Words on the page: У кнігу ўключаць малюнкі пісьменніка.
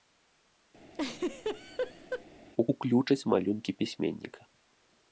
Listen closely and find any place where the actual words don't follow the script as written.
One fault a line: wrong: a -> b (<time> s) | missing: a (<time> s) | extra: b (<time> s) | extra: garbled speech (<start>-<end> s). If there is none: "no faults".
missing: кнігу (2.6 s)